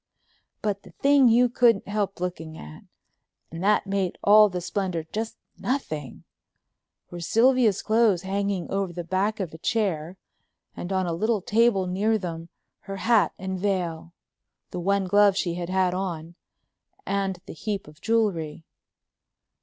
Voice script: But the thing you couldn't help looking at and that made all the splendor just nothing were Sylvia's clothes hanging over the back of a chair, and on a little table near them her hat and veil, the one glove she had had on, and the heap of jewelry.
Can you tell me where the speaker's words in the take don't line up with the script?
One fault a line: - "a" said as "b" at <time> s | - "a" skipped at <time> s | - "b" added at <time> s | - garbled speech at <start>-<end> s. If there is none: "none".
none